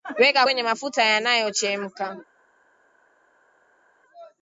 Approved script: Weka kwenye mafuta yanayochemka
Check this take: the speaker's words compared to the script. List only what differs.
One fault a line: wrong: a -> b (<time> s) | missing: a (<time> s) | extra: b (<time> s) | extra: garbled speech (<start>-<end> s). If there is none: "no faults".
no faults